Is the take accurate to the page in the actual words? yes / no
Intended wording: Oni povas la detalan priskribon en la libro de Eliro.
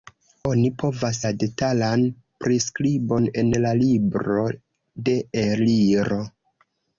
yes